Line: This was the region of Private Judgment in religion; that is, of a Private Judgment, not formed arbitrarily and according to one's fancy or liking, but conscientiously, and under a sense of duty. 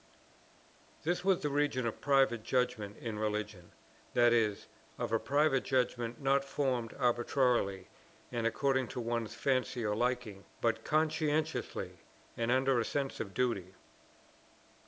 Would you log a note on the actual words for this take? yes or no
no